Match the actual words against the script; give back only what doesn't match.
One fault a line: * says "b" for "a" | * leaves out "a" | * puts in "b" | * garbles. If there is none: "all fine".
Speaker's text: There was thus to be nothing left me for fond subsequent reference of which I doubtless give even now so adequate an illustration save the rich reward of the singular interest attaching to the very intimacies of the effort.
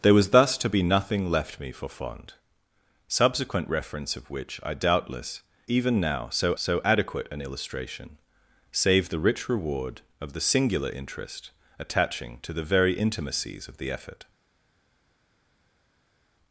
* leaves out "give"
* puts in "so"